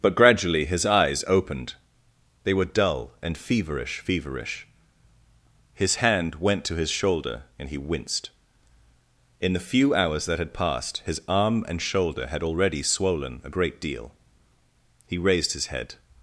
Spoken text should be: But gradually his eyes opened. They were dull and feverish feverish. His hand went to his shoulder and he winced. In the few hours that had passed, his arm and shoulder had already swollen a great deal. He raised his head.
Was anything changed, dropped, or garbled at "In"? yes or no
no